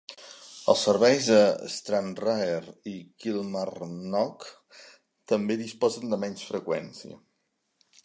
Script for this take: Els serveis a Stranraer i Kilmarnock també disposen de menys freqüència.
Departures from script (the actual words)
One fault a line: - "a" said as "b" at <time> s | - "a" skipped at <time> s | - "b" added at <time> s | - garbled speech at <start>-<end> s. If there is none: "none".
none